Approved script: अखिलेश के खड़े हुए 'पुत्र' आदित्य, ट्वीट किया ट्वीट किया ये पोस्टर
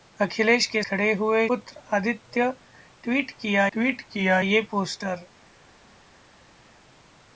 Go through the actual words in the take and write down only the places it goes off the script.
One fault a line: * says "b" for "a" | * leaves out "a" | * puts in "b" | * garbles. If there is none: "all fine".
all fine